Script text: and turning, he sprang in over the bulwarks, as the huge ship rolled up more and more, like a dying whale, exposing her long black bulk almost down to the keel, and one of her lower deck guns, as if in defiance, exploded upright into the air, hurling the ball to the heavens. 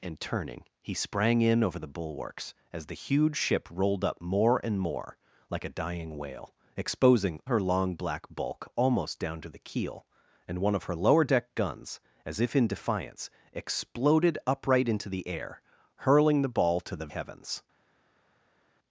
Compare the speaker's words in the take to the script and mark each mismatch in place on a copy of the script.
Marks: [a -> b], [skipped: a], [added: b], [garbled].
and turning, he sprang in over the bulwarks, as the huge ship rolled up more and more, like a dying whale, exposing her long black bulk almost down to the keel, and one of her lower deck guns, as if in defiance, exploded upright into the air, hurling the ball to the heavens.